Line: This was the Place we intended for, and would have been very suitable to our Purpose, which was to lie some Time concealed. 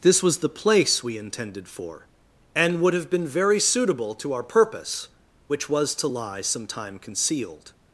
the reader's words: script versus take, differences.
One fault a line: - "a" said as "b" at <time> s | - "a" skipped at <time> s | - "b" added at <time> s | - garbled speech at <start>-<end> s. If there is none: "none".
none